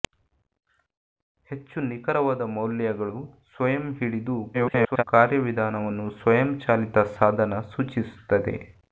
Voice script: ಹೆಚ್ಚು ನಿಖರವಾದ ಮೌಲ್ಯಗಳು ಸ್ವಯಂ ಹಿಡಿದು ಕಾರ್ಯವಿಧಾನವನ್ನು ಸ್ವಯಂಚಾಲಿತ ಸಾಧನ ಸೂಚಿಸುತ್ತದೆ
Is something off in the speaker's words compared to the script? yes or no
yes